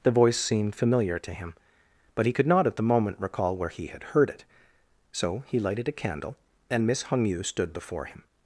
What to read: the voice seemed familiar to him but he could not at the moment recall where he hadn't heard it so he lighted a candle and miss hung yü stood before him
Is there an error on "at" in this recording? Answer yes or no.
no